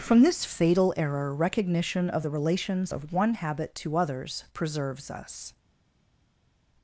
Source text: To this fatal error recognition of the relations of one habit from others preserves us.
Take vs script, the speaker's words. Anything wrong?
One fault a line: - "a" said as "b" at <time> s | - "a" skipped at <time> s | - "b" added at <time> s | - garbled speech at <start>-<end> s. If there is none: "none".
- "To" said as "From" at 0.0 s
- "from" said as "to" at 3.8 s